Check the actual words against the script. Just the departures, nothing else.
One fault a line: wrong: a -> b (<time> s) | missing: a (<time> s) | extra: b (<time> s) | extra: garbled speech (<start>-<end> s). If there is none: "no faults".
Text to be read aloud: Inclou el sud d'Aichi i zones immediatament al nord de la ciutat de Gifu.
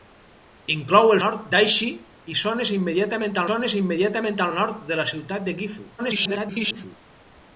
wrong: sud -> nord (1.2 s)
extra: zones immediatament (3.5 s)
extra: garbled speech (6.0-7.0 s)